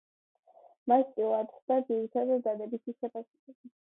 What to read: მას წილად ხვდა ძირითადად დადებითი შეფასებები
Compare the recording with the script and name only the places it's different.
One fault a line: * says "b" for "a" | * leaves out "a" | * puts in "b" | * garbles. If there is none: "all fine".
all fine